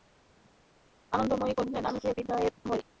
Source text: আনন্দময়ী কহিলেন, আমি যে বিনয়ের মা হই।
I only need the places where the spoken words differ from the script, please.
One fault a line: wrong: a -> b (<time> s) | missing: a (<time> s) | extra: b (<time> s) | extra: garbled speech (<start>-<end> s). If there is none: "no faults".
missing: মা (2.5 s)